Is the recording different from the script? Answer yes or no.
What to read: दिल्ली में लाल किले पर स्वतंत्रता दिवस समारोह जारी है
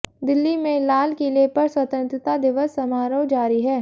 no